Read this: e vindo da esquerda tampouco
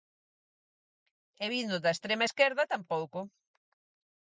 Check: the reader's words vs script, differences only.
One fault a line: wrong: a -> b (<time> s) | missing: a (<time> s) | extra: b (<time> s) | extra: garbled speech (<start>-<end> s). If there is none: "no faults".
extra: extrema (1.9 s)